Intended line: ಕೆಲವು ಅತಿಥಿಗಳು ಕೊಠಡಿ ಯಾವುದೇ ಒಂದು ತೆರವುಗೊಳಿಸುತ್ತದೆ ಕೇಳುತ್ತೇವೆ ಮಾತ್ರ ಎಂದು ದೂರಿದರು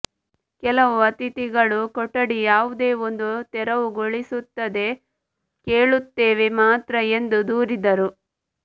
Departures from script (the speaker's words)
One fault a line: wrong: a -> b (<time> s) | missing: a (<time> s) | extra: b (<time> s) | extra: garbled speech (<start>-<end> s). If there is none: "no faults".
no faults